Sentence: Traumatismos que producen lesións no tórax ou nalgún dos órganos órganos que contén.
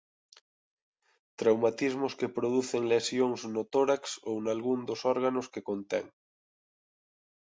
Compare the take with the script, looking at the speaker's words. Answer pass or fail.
fail